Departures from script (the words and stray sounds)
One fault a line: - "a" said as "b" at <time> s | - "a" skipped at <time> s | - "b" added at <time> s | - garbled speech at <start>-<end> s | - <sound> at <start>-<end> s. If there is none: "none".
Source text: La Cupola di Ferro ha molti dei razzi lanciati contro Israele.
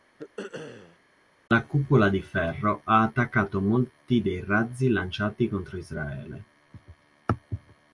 - throat clearing at 0.2-1.0 s
- "attaccato" added at 3.0 s